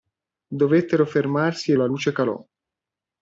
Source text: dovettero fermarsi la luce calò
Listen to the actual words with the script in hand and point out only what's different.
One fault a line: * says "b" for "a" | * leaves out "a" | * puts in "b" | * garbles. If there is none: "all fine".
all fine